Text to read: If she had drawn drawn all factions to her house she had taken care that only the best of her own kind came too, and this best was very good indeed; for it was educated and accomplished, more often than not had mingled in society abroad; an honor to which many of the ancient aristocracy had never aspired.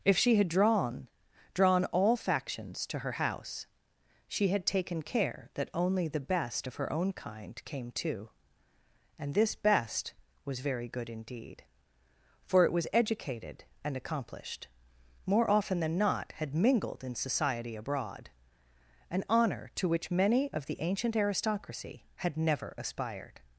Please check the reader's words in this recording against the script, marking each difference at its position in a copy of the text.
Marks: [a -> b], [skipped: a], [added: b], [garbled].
If she had drawn drawn all factions to her house she had taken care that only the best of her own kind came too, and this best was very good indeed; for it was educated and accomplished, more often than not had mingled in society abroad; an honor to which many of the ancient aristocracy had never aspired.